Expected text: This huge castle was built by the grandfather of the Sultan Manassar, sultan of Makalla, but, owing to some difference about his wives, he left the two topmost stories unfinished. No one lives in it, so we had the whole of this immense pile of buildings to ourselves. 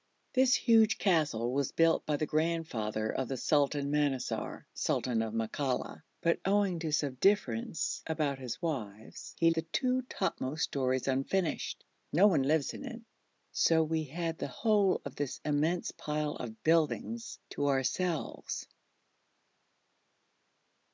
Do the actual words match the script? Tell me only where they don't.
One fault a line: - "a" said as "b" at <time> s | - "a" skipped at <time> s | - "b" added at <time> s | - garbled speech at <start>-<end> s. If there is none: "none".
- "left" skipped at 9.5 s